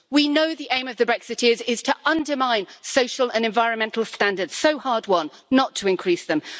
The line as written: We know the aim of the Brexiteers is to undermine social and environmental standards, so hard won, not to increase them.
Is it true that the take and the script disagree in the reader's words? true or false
false